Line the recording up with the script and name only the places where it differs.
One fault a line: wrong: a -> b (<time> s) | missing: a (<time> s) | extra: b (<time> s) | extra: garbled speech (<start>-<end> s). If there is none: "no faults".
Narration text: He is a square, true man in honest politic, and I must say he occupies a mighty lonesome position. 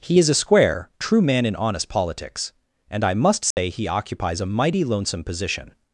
wrong: politic -> politics (1.9 s)